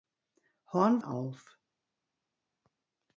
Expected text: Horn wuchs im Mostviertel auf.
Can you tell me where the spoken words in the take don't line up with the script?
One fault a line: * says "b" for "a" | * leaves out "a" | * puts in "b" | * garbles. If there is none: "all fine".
* leaves out "wuchs im Mostviertel"